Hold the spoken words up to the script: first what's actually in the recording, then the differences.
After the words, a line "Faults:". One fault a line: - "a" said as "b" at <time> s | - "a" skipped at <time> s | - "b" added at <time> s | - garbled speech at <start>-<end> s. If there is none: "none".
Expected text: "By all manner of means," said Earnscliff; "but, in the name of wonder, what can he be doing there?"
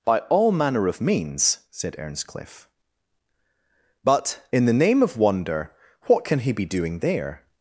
"By all manner of means," said Earnscliff; "but, in the name of wonder, what can he be doing there?"
Faults:
none